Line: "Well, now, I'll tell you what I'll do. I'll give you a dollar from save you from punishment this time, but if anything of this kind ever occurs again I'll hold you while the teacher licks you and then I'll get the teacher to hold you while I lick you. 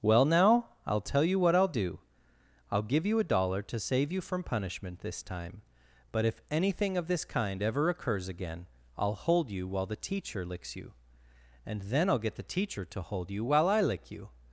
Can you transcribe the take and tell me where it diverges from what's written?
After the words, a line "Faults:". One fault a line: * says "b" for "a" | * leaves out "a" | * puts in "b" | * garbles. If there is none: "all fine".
"Well, now, I'll tell you what I'll do. I'll give you a dollar to save you from punishment this time, but if anything of this kind ever occurs again I'll hold you while the teacher licks you and then I'll get the teacher to hold you while I lick you.
Faults:
* says "to" for "from"